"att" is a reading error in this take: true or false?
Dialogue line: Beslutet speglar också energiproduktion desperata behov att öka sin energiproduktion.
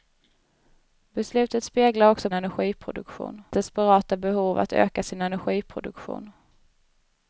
false